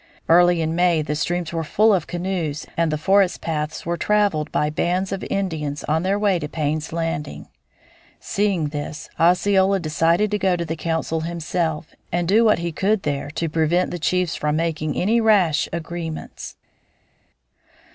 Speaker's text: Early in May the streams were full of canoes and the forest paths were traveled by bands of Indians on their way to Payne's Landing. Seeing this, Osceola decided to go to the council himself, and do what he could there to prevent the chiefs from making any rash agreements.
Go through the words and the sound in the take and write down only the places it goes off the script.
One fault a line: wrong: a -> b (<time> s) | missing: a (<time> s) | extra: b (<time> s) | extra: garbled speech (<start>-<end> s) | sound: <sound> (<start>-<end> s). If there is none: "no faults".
no faults